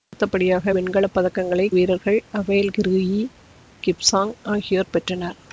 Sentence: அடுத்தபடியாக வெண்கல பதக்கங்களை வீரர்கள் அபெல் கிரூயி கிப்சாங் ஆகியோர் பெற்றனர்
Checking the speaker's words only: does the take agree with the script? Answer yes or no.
yes